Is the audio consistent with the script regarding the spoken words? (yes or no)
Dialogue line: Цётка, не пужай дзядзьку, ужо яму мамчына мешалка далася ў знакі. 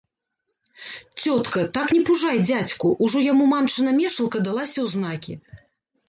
no